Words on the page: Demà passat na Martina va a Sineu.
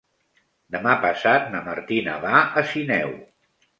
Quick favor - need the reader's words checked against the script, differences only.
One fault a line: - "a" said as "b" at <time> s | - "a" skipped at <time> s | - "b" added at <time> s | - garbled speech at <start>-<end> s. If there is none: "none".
none